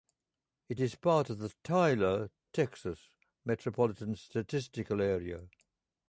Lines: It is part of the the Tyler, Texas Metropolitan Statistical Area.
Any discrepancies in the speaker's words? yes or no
yes